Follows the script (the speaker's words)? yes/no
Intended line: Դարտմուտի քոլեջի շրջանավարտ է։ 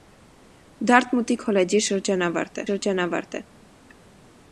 no